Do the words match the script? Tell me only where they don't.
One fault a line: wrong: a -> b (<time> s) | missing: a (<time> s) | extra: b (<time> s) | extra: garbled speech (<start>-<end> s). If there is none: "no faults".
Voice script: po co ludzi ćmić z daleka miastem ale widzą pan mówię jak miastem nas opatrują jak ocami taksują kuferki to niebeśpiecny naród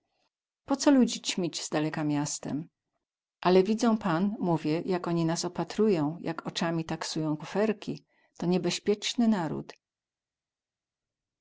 wrong: miastem -> oni (5.1 s)